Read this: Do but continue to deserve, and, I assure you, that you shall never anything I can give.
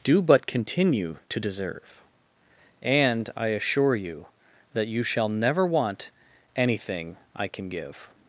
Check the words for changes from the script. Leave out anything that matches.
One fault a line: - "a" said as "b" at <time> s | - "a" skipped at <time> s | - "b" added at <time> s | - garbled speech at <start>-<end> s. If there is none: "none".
- "want" added at 5.7 s